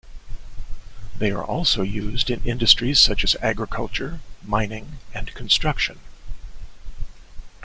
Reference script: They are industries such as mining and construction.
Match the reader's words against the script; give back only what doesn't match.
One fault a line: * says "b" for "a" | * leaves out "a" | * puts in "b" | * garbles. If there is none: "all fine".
* puts in "also used in"
* puts in "agriculture"